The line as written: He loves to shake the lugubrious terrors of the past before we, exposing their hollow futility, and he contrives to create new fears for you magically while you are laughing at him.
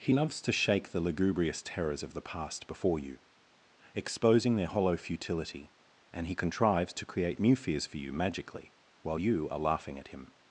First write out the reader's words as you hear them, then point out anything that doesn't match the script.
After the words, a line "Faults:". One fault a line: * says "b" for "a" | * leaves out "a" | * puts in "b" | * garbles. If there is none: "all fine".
He loves to shake the lugubrious terrors of the past before you, exposing their hollow futility, and he contrives to create new fears for you magically while you are laughing at him.
Faults:
* says "you" for "we"